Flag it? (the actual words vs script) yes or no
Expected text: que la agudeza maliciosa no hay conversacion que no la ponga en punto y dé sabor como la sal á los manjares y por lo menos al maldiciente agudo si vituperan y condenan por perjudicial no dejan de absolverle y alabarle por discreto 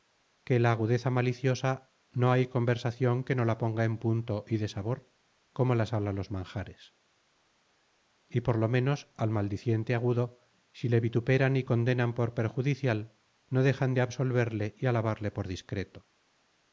yes